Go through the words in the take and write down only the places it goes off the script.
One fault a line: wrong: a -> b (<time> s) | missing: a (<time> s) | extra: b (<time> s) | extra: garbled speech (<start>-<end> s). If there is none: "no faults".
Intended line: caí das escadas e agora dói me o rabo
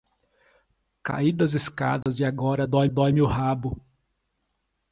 extra: dói (2.9 s)